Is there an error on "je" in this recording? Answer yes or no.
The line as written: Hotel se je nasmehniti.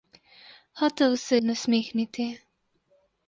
yes